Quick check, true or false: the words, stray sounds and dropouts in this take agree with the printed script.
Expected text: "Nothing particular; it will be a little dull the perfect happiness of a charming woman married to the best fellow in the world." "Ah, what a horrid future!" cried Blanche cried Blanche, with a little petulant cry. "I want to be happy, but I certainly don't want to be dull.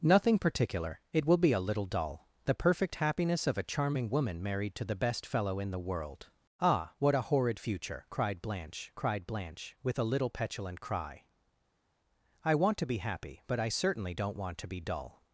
true